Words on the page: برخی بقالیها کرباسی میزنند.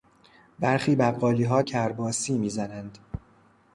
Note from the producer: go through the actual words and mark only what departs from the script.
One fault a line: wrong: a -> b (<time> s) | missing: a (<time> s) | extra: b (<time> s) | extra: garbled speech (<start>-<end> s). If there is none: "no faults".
no faults